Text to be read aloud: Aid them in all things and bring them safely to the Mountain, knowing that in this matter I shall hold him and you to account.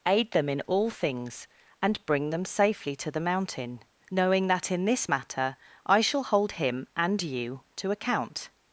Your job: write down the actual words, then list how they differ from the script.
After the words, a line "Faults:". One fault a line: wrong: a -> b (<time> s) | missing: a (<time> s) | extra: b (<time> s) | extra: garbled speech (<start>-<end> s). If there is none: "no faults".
Aid them in all things and bring them safely to the Mountain, knowing that in this matter I shall hold him and you to account.
Faults:
no faults